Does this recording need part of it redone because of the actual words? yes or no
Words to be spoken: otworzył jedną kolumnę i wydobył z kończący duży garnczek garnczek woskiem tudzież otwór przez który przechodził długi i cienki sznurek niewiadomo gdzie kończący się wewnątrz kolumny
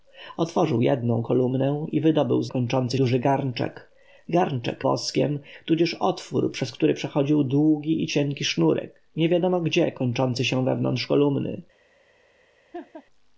no